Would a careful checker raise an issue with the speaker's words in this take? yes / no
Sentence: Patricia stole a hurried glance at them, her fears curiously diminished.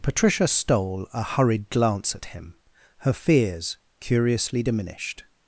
yes